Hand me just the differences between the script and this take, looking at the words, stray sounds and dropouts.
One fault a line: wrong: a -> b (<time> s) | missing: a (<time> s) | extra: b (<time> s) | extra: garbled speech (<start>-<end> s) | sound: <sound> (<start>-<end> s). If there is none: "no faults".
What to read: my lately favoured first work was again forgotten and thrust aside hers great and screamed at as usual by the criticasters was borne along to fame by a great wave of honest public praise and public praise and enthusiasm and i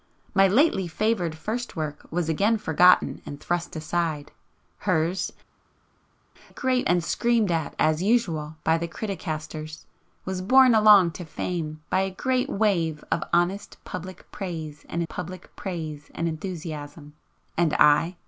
no faults